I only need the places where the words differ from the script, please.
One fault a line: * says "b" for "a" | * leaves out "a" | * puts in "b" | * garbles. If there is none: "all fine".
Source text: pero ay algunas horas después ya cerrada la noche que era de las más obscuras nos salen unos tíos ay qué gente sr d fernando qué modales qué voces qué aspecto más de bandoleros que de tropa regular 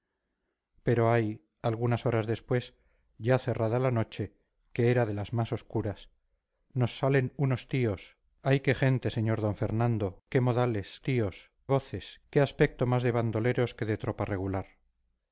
* says "tíos" for "qué"